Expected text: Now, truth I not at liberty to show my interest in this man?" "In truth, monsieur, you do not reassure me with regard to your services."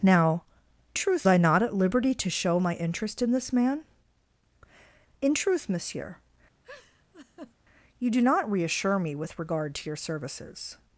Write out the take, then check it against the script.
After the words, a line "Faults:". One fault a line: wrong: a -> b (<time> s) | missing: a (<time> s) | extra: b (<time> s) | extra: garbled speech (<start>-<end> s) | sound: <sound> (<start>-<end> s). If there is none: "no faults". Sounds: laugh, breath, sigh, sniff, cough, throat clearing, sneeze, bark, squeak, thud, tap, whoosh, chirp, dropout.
Now, truth I not at liberty to show my interest in this man?" "In truth, monsieur, you do not reassure me with regard to your services."
Faults:
sound: laugh (6.6-7.5 s)